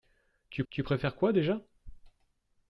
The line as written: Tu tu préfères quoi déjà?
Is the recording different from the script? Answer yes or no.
no